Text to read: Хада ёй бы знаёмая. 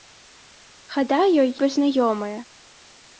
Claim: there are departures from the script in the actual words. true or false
false